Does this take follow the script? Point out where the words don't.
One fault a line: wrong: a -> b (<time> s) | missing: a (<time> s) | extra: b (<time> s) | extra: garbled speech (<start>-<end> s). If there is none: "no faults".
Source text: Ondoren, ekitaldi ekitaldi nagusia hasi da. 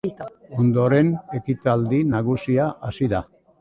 missing: ekitaldi (2.0 s)